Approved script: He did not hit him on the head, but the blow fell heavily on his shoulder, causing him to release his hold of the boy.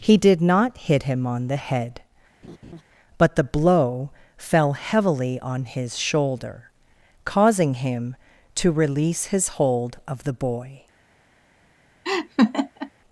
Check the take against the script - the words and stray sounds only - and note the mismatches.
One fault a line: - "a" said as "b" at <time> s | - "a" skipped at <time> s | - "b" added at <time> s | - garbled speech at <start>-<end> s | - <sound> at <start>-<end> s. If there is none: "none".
- laugh at 2.4-2.8 s
- laugh at 12.0-12.9 s